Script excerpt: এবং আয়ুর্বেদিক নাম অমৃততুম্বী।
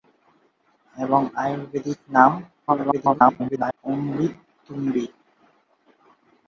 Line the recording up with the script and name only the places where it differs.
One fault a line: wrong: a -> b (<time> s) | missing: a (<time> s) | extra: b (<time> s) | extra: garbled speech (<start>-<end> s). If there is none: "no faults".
extra: garbled speech (2.7-3.8 s)